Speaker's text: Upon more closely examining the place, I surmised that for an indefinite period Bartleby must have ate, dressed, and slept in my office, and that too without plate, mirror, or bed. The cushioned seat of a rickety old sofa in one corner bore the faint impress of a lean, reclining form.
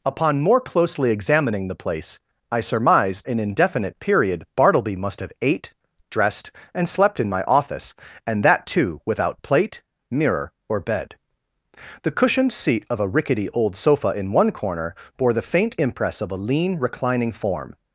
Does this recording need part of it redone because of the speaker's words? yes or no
yes